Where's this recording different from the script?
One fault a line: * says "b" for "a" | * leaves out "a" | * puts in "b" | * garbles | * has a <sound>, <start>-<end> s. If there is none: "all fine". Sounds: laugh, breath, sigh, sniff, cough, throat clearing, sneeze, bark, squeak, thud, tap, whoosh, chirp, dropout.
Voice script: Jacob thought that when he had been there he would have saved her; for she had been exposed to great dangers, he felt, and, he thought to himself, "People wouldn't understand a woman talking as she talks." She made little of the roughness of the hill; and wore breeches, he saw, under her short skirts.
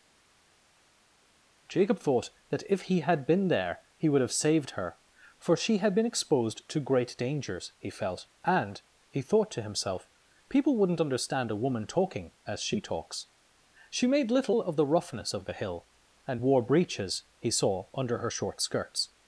* says "if" for "when"